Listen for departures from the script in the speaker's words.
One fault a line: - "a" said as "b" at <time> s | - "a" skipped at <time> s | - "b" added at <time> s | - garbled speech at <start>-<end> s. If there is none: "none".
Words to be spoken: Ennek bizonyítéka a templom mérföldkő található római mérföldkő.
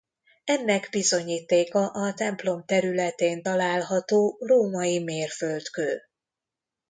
- "mérföldkő" said as "területén" at 2.6 s